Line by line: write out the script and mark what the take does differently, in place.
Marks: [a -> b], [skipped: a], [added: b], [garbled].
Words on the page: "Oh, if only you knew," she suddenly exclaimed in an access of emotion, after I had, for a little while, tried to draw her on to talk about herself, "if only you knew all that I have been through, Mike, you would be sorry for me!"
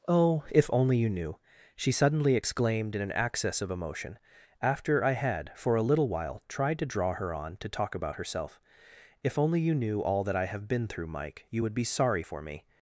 "Oh, if only you knew," she suddenly exclaimed in an access of emotion, after I had, for a little while, tried to draw her on to talk about herself, "if only you knew all that I have been through, Mike, you would be sorry for me!"